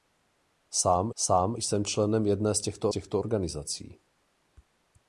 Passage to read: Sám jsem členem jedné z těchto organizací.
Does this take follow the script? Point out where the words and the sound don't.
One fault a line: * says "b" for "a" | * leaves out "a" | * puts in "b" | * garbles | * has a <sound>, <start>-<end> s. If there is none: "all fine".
* puts in "sám"
* puts in "těchto"